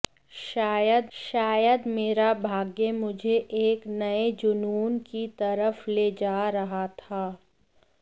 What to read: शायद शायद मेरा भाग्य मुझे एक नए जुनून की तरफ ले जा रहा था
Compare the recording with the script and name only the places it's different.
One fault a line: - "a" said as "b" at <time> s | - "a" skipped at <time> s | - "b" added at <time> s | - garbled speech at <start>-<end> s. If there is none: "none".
none